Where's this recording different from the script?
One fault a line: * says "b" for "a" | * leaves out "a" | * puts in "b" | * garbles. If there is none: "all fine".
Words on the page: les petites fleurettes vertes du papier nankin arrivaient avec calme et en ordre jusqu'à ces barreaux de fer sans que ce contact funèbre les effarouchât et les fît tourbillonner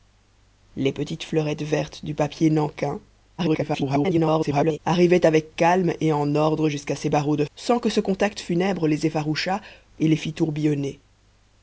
* garbles
* leaves out "fer"